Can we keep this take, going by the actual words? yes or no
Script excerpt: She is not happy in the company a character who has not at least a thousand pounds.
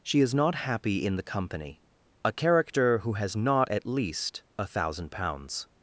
yes